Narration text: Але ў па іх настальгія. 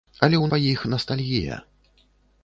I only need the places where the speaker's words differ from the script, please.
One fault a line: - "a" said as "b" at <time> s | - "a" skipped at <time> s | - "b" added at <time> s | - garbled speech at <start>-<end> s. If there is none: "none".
none